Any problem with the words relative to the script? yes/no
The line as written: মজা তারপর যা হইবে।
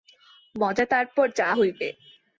no